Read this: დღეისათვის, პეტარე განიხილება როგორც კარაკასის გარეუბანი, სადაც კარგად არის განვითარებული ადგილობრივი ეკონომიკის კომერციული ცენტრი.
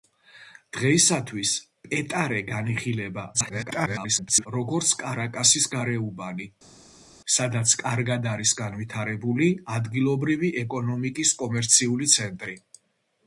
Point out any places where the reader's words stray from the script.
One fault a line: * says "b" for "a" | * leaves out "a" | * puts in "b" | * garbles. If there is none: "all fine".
* garbles